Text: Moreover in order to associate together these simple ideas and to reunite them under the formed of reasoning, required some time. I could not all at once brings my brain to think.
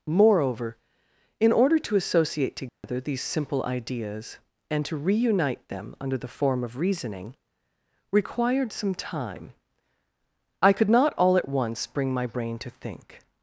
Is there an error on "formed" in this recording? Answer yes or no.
yes